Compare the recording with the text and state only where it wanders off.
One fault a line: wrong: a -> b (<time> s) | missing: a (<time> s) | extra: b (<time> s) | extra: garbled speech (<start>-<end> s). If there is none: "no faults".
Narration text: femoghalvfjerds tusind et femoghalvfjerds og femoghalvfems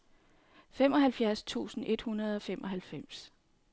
wrong: femoghalvfjerds -> hundrede (2.0 s)